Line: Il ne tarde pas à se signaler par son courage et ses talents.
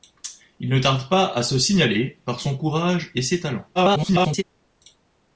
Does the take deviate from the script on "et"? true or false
false